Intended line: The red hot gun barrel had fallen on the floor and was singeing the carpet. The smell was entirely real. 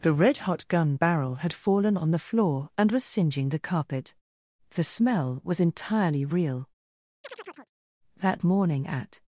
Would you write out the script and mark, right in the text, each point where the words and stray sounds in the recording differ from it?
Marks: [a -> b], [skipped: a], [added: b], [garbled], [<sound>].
The red hot gun barrel had fallen on the floor and was singeing the carpet. The smell was entirely real. [chirp] [added: That morning at]